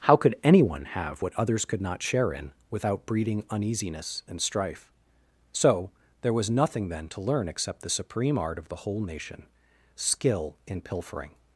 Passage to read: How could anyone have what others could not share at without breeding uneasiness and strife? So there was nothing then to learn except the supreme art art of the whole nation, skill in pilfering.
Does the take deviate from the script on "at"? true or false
true